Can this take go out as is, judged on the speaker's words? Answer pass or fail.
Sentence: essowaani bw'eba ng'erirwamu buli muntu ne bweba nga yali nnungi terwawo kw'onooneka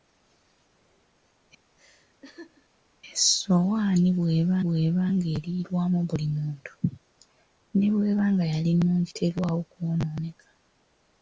fail